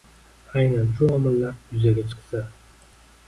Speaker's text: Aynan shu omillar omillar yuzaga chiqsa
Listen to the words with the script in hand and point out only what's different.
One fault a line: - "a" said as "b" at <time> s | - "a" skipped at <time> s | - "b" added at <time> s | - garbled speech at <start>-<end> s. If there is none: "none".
- "omillar" skipped at 1.5 s